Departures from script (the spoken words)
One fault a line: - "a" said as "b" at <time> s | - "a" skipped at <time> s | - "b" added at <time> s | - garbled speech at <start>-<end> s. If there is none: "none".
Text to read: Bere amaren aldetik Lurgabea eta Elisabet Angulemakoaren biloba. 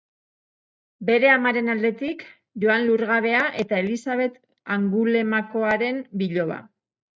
- "Joan" added at 2.6 s